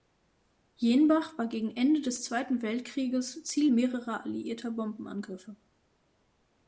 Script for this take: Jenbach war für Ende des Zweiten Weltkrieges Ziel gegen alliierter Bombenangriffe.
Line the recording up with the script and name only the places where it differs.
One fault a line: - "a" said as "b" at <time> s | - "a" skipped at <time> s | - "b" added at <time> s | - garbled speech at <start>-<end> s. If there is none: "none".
- "für" said as "gegen" at 1.4 s
- "gegen" said as "mehrerer" at 3.7 s